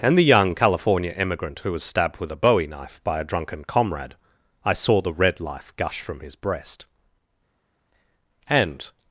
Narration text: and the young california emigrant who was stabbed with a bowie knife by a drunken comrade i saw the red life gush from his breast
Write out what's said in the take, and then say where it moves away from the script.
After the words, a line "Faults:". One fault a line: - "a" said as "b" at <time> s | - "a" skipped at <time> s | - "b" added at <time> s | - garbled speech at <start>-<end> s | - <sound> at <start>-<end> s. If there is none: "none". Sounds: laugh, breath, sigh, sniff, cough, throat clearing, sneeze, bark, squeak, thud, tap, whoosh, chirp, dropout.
and the young california emigrant who was stabbed with a bowie knife by a drunken comrade i saw the red life gush from his breast and
Faults:
- "and" added at 8.5 s